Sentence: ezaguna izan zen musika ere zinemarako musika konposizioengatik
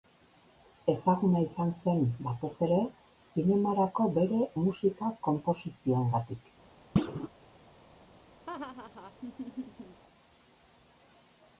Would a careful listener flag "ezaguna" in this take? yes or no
no